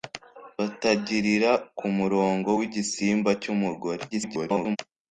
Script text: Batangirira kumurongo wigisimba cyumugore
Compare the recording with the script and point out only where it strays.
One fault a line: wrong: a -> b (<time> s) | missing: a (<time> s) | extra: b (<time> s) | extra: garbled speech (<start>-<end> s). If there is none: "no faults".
extra: garbled speech (4.1-4.8 s)